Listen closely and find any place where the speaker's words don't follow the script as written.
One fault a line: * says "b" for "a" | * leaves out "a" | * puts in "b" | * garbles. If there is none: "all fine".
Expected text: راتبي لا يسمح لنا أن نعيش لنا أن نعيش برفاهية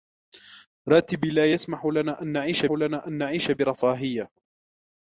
all fine